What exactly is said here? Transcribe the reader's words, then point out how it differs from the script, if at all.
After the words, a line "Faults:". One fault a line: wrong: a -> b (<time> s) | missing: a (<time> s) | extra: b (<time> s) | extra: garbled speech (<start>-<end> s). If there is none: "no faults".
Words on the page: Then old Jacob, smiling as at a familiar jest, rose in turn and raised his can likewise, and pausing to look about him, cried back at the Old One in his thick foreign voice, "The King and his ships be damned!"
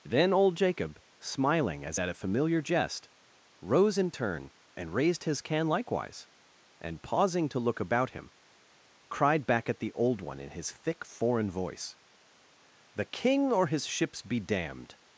Then old Jacob, smiling as at a familiar jest, rose in turn and raised his can likewise, and pausing to look about him, cried back at the Old One in his thick foreign voice, "The King or his ships be damned!"
Faults:
wrong: and -> or (13.5 s)